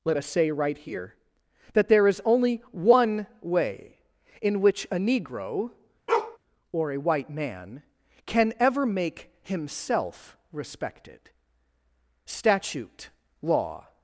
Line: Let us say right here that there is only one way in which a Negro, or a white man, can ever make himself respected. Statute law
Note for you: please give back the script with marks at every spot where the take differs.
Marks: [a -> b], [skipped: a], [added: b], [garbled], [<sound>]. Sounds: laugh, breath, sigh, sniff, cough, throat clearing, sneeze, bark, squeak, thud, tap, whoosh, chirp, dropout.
Let us say right here that there is only one way in which a Negro, [bark] or a white man, can ever make himself respected. Statute law